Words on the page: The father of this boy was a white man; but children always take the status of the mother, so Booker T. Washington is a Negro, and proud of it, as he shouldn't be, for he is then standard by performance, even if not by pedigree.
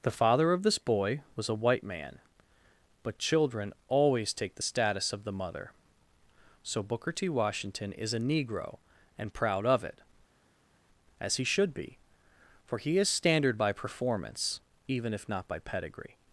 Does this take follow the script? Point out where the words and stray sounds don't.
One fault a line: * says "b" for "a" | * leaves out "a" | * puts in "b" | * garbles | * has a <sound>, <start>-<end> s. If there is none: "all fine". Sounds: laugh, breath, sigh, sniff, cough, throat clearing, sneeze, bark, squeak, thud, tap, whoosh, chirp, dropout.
* says "should" for "shouldn't"
* leaves out "then"